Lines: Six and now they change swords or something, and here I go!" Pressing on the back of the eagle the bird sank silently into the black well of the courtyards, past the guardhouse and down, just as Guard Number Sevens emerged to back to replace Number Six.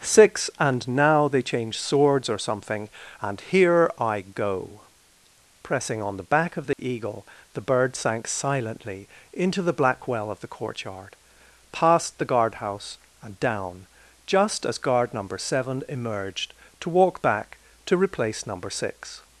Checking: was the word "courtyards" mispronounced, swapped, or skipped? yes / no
yes